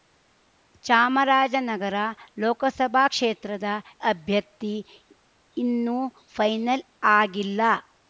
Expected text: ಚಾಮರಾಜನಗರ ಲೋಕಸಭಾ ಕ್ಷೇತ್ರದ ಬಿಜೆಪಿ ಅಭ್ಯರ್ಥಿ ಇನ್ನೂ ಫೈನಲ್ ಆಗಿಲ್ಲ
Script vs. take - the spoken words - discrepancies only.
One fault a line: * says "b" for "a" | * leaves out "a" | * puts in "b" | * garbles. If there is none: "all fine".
* leaves out "ಬಿಜೆಪಿ"